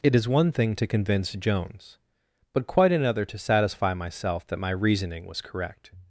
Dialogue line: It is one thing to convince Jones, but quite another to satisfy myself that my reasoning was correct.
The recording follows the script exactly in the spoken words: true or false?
true